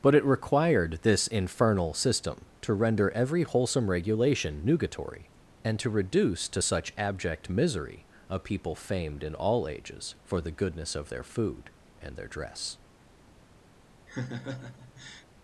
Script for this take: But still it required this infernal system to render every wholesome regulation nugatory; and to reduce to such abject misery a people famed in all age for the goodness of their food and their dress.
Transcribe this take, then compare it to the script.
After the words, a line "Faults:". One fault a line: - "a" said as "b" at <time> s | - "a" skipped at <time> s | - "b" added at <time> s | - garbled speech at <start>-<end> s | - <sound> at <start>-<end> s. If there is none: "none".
But it required this infernal system to render every wholesome regulation nugatory; and to reduce to such abject misery a people famed in all ages for the goodness of their food and their dress.
Faults:
- "still" skipped at 0.1 s
- "age" said as "ages" at 9.7 s
- laugh at 14.1-15.3 s